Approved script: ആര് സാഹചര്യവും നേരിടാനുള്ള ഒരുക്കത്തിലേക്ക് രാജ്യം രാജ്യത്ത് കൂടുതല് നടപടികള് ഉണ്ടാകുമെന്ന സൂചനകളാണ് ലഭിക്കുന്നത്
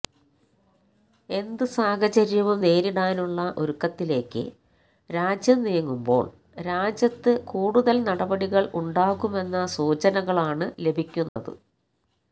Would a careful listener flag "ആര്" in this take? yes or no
yes